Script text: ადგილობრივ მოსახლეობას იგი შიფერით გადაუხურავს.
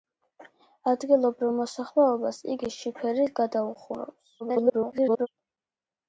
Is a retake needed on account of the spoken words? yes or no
yes